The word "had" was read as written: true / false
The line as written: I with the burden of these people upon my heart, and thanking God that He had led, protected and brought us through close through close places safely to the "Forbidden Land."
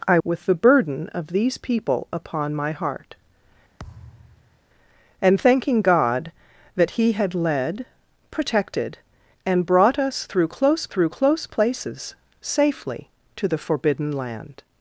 true